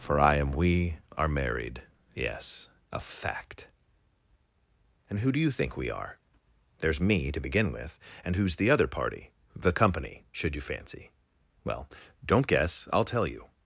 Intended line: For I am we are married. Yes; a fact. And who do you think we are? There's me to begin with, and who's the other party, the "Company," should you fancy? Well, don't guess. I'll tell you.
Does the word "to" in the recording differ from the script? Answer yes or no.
no